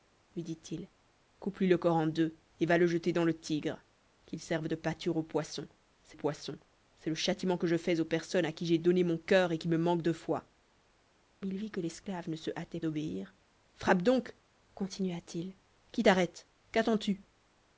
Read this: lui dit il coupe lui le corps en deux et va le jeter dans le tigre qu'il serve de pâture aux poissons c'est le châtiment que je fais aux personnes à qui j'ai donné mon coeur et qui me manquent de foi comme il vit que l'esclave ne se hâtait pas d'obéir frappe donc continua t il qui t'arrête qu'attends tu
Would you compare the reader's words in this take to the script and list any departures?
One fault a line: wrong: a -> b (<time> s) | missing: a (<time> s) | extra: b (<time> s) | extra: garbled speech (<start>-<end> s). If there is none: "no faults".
extra: poissons c'est (6.1 s)
missing: comme (10.5 s)
missing: pas (12.8 s)